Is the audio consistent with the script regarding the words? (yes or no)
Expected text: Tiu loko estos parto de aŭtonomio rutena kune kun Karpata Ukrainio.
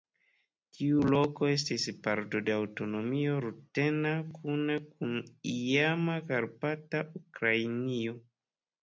no